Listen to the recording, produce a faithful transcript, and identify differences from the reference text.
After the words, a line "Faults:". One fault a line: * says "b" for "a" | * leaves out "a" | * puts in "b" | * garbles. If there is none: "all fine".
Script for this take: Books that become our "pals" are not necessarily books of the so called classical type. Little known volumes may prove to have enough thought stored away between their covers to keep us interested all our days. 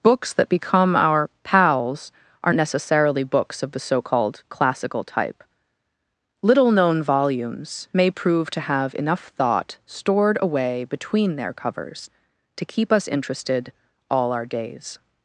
Books that become our "pals" are necessarily books of the so called classical type. Little known volumes may prove to have enough thought stored away between their covers to keep us interested all our days.
Faults:
* leaves out "not"